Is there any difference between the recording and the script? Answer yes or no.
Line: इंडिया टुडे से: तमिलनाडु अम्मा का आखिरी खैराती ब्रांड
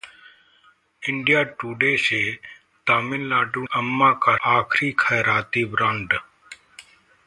no